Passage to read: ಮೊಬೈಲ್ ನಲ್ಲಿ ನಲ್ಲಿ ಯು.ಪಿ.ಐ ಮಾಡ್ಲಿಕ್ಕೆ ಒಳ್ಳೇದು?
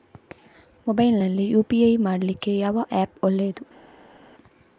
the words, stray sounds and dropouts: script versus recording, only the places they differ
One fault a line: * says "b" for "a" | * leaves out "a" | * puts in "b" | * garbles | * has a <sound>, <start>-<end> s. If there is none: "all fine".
* leaves out "ನಲ್ಲಿ"
* puts in "ಯಾವ ಆ್ಯಪ್"